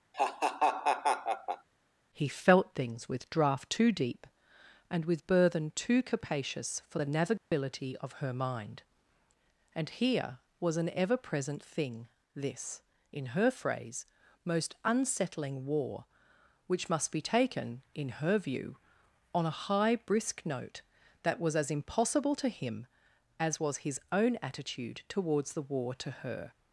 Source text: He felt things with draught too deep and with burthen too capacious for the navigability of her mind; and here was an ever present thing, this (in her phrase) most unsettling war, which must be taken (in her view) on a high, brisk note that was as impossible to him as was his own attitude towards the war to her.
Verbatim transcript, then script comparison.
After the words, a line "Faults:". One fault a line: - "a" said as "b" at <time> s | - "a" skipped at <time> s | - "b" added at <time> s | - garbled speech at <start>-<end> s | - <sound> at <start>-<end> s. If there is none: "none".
He felt things with draught too deep and with burthen too capacious for the navigability of her mind; and here was an ever present thing, this (in her phrase) most unsettling war, which must be taken (in her view) on a high, brisk note that was as impossible to him as was his own attitude towards the war to her.
Faults:
- laugh at 0.1-1.7 s
- dropout at 7.4-7.5 s